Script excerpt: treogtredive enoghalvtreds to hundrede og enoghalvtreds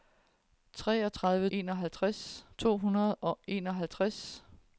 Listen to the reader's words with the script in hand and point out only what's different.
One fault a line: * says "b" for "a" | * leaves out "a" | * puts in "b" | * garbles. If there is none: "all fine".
all fine